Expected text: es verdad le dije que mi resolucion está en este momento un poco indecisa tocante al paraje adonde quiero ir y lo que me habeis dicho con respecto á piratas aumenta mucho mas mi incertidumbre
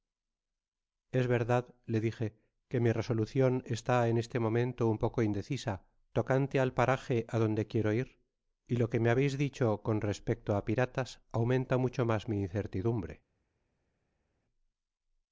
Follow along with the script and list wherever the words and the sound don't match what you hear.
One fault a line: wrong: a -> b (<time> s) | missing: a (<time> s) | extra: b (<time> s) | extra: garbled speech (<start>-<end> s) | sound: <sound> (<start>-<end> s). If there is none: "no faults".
no faults